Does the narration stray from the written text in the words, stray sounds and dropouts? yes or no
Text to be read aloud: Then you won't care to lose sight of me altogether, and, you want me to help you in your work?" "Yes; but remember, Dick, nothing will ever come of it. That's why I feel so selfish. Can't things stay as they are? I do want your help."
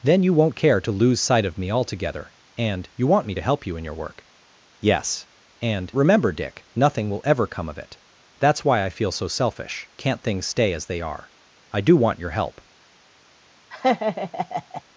yes